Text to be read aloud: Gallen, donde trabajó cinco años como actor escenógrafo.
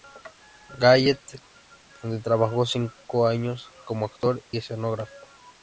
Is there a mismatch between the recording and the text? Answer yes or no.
no